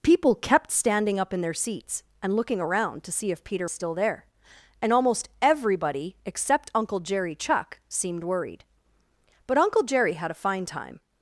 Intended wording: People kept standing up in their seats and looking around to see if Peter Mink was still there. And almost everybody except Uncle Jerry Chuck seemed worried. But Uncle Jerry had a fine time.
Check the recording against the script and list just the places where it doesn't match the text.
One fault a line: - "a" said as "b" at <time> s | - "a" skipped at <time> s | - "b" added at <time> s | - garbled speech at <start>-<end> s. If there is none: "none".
- "Mink was" skipped at 3.7 s